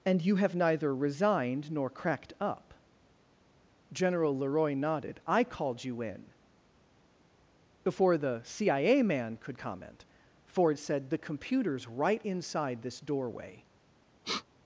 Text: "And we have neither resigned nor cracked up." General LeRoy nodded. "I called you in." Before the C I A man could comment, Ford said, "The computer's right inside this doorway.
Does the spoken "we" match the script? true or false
false